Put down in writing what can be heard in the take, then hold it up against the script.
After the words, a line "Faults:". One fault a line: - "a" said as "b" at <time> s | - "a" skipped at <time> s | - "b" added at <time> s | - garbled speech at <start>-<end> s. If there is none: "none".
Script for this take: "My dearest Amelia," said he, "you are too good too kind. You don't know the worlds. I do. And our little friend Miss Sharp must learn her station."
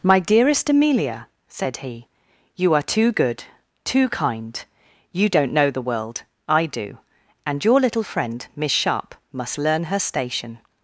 "My dearest Amelia," said he, "you are too good too kind. You don't know the world. I do. And your little friend Miss Sharp must learn her station."
Faults:
- "worlds" said as "world" at 5.8 s
- "our" said as "your" at 7.6 s